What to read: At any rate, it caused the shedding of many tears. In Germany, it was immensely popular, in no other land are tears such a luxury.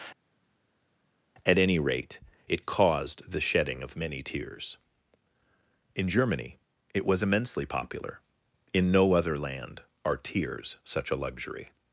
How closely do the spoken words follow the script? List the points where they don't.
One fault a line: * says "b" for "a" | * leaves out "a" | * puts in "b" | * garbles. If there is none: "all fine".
all fine